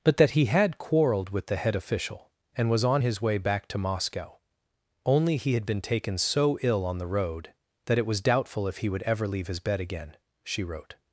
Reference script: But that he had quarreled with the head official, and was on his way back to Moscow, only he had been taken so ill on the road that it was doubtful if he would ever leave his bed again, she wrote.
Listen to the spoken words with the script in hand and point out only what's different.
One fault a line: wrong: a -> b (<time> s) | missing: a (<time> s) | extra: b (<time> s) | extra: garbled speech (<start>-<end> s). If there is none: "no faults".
no faults